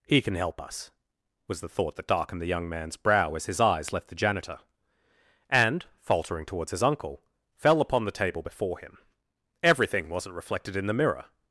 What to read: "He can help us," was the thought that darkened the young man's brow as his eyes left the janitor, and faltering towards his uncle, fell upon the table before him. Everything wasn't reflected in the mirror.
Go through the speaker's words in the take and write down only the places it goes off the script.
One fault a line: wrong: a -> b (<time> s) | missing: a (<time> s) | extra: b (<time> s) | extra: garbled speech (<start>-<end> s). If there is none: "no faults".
no faults